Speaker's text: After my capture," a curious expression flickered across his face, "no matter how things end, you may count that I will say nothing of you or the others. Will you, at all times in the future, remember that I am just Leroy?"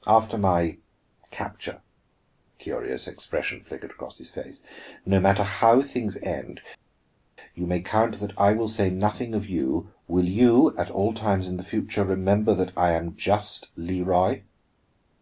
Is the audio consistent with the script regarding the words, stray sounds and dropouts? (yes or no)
no